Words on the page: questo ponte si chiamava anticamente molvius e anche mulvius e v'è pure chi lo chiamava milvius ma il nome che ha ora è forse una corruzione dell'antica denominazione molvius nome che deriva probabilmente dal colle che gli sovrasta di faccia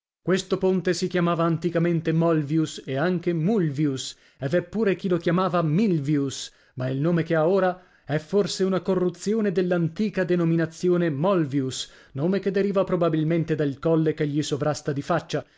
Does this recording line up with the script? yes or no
yes